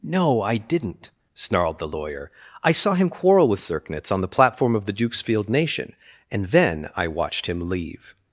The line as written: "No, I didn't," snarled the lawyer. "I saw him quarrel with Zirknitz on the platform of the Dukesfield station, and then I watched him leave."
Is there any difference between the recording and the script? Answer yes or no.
yes